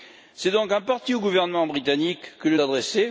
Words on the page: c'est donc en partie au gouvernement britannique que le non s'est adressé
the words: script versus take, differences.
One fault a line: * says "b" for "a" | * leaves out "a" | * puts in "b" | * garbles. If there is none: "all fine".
* leaves out "non s'est"